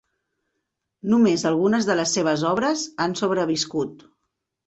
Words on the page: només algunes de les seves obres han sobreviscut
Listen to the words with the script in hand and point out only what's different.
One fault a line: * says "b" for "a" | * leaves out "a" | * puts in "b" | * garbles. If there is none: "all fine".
all fine